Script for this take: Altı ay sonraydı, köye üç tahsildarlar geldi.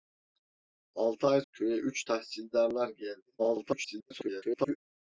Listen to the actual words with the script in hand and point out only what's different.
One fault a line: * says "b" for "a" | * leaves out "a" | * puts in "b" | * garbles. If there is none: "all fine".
* leaves out "sonraydı"
* garbles